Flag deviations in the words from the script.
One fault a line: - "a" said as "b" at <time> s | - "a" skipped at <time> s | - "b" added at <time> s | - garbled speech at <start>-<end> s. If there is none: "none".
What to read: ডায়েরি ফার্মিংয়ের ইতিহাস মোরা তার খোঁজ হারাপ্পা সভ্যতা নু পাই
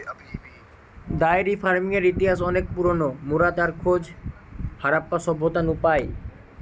- "অনেক পুরোনো" added at 2.4 s